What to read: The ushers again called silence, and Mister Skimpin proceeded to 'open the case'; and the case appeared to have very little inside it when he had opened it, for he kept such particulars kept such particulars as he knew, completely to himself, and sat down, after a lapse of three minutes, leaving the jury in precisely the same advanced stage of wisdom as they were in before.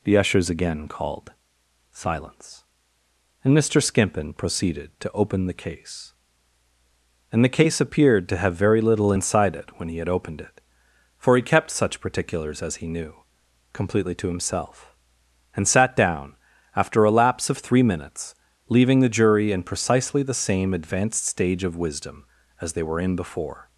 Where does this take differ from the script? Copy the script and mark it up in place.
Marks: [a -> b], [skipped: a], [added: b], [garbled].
The ushers again called silence, and Mister Skimpin proceeded to 'open the case'; and the case appeared to have very little inside it when he had opened it, for he kept such particulars [skipped: kept such particulars] as he knew, completely to himself, and sat down, after a lapse of three minutes, leaving the jury in precisely the same advanced stage of wisdom as they were in before.